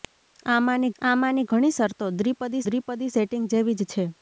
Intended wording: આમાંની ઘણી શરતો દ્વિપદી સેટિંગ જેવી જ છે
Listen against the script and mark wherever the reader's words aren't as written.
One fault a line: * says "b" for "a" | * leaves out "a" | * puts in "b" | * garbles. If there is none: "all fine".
* puts in "આમાંની"
* puts in "દ્વિપદી"